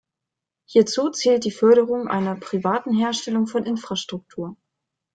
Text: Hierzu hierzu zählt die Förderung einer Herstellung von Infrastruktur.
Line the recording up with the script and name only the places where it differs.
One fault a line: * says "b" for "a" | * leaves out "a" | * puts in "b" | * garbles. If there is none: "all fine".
* leaves out "hierzu"
* puts in "privaten"